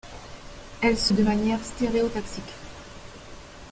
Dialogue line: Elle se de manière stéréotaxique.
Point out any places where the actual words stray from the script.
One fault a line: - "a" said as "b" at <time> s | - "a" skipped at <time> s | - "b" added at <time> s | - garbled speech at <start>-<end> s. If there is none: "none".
none